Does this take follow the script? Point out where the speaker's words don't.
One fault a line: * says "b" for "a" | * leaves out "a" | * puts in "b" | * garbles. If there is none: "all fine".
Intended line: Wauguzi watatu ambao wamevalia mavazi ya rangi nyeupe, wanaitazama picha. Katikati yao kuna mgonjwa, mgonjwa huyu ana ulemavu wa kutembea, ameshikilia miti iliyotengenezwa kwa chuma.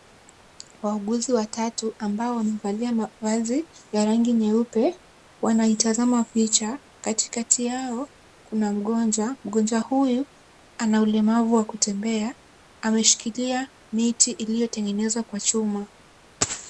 all fine